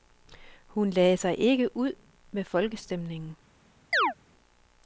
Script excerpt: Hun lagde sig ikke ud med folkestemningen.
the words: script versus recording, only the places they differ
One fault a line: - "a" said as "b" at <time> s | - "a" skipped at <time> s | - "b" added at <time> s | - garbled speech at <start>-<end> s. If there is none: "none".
none